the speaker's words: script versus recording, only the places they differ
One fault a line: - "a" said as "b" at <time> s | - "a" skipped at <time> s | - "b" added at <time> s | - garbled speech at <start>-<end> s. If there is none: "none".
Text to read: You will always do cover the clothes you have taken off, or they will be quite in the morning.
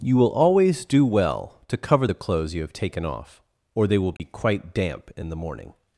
- "well to" added at 1.1 s
- "damp" added at 4.7 s